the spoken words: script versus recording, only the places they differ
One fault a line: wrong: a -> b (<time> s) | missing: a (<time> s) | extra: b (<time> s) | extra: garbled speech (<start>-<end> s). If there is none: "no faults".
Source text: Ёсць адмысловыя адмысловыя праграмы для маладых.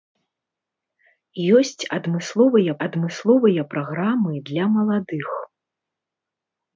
no faults